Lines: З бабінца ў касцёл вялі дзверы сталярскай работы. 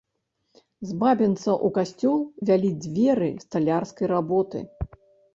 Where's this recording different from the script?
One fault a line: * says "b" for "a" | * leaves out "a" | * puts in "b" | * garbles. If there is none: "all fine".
all fine